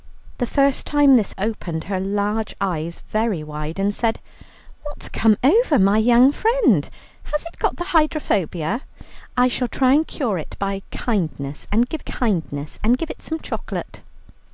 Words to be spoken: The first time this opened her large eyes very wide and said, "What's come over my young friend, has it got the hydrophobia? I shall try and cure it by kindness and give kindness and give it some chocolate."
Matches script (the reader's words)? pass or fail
pass